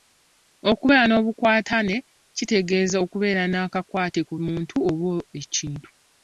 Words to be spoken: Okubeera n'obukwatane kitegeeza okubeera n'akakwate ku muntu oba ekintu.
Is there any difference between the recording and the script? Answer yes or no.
no